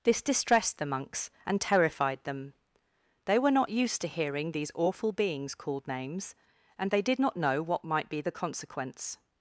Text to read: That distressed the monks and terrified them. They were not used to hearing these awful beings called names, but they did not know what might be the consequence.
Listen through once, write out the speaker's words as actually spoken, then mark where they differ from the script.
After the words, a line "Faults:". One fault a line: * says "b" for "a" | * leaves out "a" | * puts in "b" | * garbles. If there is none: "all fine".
This distressed the monks and terrified them. They were not used to hearing these awful beings called names, and they did not know what might be the consequence.
Faults:
* says "This" for "That"
* says "and" for "but"